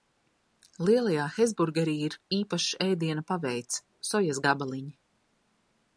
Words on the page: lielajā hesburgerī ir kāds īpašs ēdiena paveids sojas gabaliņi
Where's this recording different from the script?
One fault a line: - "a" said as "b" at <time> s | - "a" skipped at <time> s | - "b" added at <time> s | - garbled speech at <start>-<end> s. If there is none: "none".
- "kāds" skipped at 2.1 s